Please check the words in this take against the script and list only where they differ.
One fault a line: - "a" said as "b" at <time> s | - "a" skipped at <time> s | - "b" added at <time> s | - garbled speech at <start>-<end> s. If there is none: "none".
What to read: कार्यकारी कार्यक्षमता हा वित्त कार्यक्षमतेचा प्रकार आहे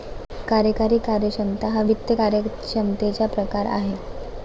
none